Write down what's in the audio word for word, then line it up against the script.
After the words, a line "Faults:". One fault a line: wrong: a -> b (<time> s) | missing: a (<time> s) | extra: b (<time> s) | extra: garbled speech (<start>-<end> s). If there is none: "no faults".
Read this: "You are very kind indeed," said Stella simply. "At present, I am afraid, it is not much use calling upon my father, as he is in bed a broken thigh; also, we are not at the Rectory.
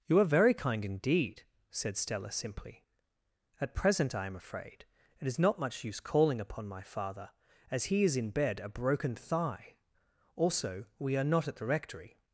"You are very kind indeed," said Stella simply. "At present, I am afraid, it is not much use calling upon my father, as he is in bed a broken thigh; also, we are not at the Rectory.
Faults:
no faults